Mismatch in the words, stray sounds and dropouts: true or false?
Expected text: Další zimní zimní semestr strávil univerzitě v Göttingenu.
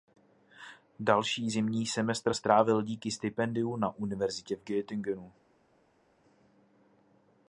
true